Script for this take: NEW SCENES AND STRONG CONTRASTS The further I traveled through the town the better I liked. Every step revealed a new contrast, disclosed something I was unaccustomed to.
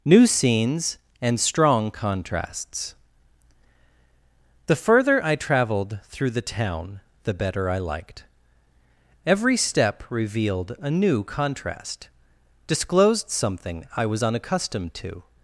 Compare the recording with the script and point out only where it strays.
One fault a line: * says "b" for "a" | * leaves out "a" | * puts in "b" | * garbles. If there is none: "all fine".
all fine